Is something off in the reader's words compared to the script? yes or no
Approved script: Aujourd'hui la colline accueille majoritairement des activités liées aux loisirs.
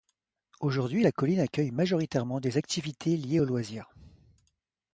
no